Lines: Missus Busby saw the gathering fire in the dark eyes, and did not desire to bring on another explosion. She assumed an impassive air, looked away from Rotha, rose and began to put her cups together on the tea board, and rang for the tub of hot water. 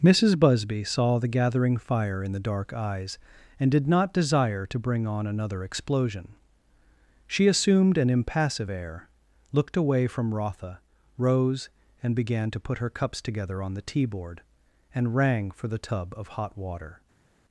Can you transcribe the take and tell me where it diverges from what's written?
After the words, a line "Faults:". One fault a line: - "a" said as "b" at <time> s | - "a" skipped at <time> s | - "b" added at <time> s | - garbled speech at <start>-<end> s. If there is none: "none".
Missus Busby saw the gathering fire in the dark eyes, and did not desire to bring on another explosion. She assumed an impassive air, looked away from Rotha, rose and began to put her cups together on the tea board, and rang for the tub of hot water.
Faults:
none